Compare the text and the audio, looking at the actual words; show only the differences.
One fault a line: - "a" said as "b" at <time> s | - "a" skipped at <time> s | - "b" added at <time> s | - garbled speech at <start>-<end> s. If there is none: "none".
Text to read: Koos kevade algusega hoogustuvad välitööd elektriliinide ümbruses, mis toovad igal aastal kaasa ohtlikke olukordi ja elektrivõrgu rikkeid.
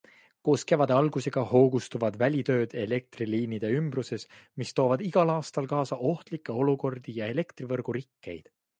none